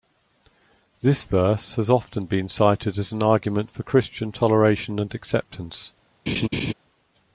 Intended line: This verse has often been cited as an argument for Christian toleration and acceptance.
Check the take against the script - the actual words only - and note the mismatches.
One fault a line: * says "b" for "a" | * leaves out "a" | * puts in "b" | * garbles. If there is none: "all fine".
all fine